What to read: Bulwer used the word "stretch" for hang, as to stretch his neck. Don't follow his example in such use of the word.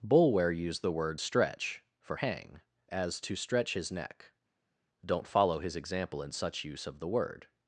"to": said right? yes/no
yes